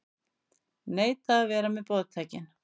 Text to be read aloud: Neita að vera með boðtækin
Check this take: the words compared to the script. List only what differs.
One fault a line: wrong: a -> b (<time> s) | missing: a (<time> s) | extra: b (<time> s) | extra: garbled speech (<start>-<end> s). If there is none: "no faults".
no faults